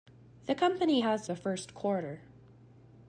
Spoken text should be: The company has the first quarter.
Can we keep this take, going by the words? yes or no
yes